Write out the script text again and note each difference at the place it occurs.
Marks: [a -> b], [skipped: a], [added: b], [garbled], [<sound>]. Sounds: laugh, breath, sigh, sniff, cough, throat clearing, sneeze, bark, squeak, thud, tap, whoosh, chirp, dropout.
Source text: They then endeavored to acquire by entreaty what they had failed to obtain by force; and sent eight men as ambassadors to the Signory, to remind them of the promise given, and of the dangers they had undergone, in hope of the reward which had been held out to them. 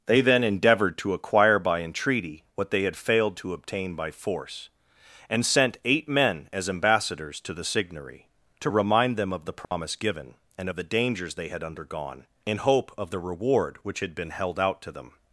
They then endeavored to acquire by entreaty what they had failed to obtain by force; and sent eight men as ambassadors to the Signory, to remind them of the promise [dropout] given, and of the dangers they had undergone, in hope of the reward which had been held out to them.